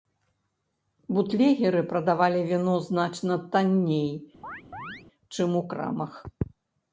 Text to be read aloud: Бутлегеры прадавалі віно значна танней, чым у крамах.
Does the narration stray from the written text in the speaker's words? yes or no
no